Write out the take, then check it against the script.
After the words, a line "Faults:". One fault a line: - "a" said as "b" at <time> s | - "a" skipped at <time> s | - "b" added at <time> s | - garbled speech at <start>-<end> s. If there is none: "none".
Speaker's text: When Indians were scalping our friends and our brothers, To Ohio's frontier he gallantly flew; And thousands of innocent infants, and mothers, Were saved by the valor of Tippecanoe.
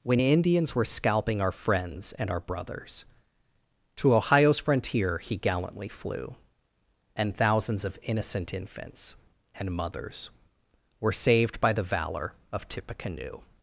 When Indians were scalping our friends and our brothers, To Ohio's frontier he gallantly flew; And thousands of innocent infants, and mothers, Were saved by the valor of Tippecanoe.
Faults:
none